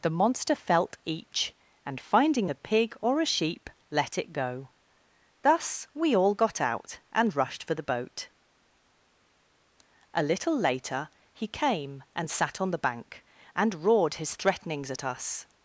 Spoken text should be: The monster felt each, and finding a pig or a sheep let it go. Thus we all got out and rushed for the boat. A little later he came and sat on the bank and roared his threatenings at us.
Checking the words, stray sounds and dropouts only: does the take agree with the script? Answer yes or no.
yes